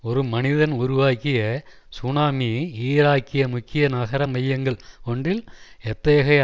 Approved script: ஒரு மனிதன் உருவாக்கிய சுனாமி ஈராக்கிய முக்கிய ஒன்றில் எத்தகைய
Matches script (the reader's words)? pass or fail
fail